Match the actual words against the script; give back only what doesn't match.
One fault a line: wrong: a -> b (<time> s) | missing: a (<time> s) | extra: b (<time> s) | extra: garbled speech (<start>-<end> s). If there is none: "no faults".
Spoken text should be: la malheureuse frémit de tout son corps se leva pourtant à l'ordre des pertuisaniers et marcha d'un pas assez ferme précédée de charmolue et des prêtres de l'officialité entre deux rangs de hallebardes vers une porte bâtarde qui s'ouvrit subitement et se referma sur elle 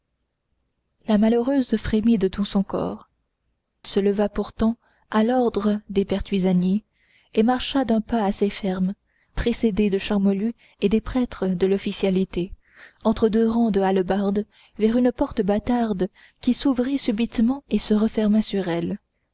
no faults